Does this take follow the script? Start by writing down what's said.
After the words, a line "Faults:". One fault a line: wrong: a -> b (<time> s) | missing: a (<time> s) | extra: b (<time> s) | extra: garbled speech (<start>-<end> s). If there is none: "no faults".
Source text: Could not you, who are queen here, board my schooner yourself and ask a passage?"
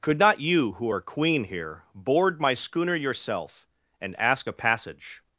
Could not you, who are queen here, board my schooner yourself and ask a passage?"
Faults:
no faults